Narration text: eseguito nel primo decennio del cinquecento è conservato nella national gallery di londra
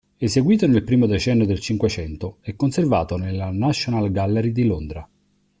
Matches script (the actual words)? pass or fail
pass